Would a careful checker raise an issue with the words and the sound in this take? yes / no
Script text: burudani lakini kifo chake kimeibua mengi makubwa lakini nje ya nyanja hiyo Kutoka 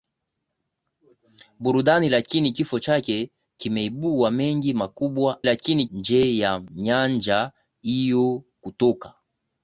no